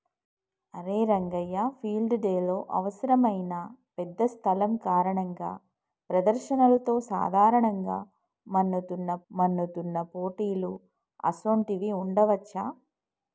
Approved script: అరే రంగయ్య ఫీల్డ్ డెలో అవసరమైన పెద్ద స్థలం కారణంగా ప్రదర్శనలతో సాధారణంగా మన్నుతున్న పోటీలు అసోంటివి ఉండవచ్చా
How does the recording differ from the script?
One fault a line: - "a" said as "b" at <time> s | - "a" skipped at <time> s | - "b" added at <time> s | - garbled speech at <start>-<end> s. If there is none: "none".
- "మన్నుతున్న" added at 9.3 s